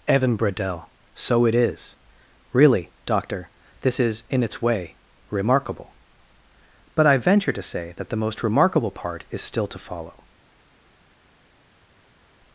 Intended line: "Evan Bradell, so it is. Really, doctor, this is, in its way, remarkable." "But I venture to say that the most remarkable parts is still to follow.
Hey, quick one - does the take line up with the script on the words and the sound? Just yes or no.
no